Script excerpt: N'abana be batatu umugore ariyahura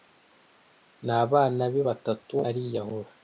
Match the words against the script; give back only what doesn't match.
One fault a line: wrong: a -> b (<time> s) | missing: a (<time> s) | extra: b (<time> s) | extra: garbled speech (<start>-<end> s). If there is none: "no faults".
missing: umugore (2.3 s)